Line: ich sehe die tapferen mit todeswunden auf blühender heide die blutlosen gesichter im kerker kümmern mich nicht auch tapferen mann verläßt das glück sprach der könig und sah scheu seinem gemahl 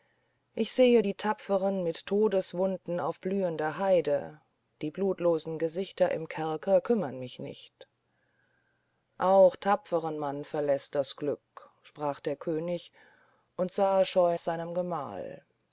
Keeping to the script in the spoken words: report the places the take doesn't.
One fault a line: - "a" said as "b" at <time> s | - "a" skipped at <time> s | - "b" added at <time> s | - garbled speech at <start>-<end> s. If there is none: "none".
none